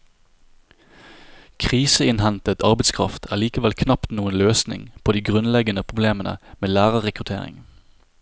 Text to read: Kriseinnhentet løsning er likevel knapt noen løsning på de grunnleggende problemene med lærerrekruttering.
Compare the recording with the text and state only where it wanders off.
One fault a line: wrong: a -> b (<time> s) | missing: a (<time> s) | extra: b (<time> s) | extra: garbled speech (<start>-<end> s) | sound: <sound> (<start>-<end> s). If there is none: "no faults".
wrong: løsning -> arbeidskraft (2.6 s)